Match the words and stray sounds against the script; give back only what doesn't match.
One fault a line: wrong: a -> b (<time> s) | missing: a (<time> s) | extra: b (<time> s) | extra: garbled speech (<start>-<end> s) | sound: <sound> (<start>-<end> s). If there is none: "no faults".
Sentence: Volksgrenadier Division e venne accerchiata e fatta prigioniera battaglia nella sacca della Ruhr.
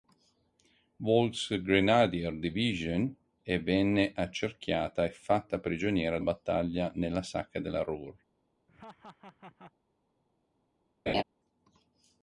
sound: laugh (8.7-9.7 s)
sound: laugh (11.1-11.2 s)